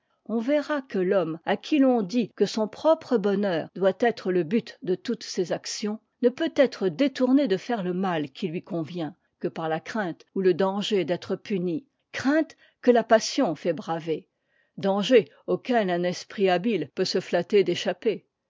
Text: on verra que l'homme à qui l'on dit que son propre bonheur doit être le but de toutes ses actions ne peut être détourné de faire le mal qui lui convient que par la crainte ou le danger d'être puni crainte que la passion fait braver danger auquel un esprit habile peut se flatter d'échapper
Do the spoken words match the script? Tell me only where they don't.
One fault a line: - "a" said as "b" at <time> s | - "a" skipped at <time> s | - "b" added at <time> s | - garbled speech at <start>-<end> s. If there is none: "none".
none